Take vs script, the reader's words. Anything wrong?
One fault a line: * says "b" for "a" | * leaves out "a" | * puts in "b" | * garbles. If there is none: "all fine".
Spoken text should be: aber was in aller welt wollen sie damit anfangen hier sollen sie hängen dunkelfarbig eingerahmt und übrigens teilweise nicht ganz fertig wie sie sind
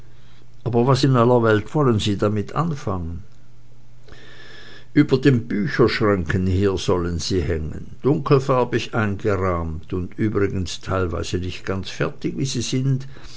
* puts in "über den bücherschränken"